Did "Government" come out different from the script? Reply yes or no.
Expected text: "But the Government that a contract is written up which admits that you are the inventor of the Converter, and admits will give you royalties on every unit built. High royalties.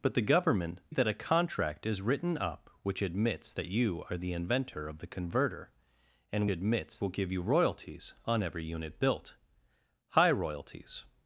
no